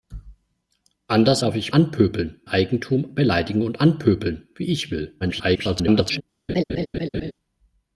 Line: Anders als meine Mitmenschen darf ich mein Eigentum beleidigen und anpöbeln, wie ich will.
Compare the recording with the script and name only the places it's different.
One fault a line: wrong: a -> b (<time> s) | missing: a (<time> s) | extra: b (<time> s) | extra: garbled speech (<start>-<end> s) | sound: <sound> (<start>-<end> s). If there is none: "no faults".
missing: als meine Mitmenschen (1.4 s)
wrong: mein -> anpöbeln (1.7 s)
extra: garbled speech (5.2-6.2 s)
sound: laugh (6.5-7.3 s)